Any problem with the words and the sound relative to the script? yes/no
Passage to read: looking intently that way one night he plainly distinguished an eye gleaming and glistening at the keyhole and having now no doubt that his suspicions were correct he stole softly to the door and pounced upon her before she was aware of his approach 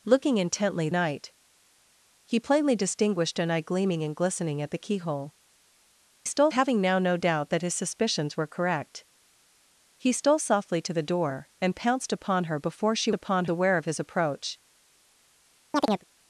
yes